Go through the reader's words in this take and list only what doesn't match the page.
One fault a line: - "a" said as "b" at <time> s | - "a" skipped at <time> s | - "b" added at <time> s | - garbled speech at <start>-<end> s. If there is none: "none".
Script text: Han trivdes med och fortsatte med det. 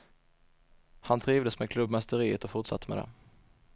- "klubbmästeriet" added at 1.7 s